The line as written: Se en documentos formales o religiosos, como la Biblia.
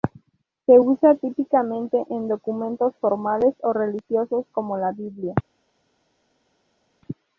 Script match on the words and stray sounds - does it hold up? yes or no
no